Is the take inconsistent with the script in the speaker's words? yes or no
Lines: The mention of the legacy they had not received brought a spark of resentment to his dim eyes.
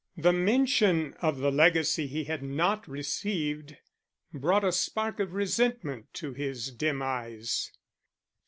yes